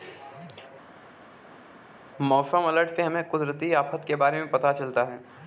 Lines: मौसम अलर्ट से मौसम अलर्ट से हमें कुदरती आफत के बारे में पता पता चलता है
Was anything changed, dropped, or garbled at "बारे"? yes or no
no